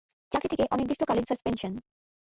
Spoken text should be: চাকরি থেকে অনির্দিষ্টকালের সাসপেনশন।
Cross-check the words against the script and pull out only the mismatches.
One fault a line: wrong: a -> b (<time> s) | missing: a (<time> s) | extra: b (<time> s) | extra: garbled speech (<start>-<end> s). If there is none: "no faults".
no faults